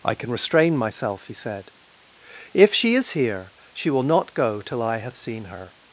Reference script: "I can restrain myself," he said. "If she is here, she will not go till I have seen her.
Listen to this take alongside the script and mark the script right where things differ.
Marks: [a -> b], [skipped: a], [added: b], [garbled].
"I can restrain myself," he said. "If she is here, she will not go till I have seen her.